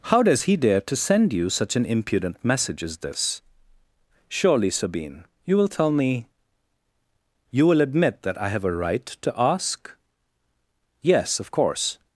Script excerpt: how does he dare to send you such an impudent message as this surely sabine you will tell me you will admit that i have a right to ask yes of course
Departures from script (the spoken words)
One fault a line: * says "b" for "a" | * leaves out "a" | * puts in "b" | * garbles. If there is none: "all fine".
all fine